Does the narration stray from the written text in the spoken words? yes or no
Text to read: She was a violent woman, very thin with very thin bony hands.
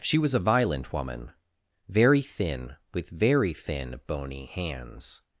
no